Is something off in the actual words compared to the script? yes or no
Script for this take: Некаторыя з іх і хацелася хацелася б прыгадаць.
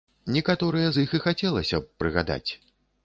yes